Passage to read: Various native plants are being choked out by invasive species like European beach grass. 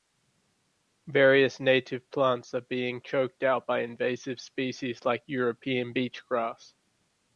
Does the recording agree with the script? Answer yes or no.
yes